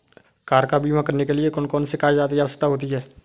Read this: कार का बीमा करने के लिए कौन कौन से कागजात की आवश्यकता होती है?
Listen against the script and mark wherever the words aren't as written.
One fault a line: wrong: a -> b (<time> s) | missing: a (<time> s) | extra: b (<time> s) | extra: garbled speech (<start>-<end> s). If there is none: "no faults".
no faults